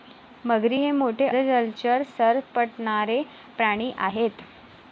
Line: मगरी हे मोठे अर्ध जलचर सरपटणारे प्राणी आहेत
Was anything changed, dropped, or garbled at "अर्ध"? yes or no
yes